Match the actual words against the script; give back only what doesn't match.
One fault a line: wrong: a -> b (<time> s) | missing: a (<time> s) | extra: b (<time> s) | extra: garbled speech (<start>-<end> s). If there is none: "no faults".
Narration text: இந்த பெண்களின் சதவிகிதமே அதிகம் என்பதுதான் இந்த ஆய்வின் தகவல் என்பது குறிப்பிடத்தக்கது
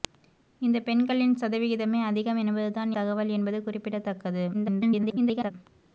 missing: இந்த ஆய்வின் (2.9 s)
extra: garbled speech (4.5-5.5 s)